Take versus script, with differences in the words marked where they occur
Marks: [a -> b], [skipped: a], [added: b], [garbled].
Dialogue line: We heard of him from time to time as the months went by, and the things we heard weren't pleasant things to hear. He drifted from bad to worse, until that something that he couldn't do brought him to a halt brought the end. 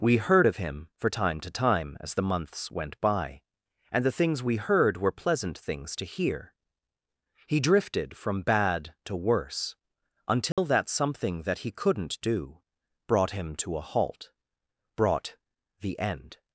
We heard of him [from -> for] time to time as the months went by, and the things we heard [weren't -> were] pleasant things to hear. He drifted from bad to worse, until that something that he couldn't do brought him to a halt brought the end.